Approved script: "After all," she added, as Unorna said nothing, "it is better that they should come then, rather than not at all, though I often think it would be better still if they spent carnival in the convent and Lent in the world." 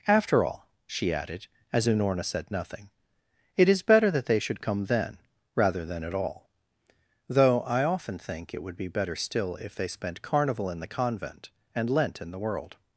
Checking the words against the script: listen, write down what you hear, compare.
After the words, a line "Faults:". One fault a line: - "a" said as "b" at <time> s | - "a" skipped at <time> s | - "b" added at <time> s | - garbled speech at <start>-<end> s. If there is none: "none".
"After all," she added, as Unorna said nothing, "it is better that they should come then, rather than at all, though I often think it would be better still if they spent carnival in the convent and Lent in the world."
Faults:
- "not" skipped at 6.0 s